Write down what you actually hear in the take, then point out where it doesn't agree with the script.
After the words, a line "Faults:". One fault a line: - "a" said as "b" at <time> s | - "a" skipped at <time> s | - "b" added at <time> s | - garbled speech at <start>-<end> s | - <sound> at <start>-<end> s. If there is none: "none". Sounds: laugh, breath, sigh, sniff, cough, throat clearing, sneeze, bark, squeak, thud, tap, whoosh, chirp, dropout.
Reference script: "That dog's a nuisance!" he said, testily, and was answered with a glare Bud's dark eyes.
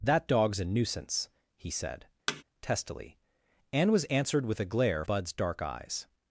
"That dog's a nuisance!" he said, testily, and was answered with a glare Bud's dark eyes.
Faults:
- thud at 2.3-2.4 s